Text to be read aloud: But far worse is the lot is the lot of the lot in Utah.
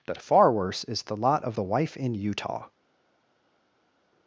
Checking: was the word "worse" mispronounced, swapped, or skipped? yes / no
no